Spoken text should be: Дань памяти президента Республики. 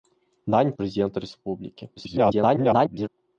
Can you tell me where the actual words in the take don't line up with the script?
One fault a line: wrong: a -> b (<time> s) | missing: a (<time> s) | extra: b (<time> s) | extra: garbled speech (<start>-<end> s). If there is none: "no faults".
missing: памяти (0.7 s)
extra: garbled speech (2.0-3.1 s)